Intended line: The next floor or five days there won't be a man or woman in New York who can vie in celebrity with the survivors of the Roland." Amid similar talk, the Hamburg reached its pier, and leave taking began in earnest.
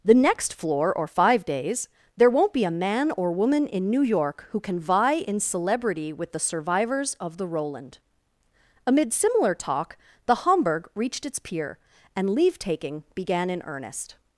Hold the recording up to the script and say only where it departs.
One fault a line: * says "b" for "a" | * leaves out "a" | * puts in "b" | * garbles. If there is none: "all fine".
all fine